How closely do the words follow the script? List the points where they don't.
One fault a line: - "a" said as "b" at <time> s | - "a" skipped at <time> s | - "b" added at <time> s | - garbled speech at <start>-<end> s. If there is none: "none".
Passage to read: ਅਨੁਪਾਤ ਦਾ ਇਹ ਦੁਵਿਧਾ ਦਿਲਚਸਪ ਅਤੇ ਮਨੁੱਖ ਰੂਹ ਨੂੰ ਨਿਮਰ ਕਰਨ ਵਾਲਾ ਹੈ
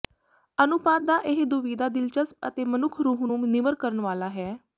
none